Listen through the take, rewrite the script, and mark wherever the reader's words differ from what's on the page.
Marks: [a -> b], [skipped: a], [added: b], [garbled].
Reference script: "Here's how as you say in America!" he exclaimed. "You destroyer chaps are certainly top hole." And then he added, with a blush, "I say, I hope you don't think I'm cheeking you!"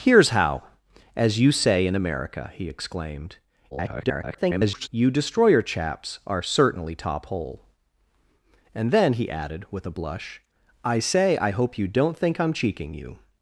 "Here's how as you say in America!" he exclaimed. [garbled] "You destroyer chaps are certainly top hole." And then he added, with a blush, "I say, I hope you don't think I'm cheeking you!"